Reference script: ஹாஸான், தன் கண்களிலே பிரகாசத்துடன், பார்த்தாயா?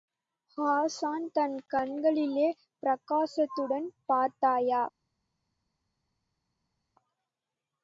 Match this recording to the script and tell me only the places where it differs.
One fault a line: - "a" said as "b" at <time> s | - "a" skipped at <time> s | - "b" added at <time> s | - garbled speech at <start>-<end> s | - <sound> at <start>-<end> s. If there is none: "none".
none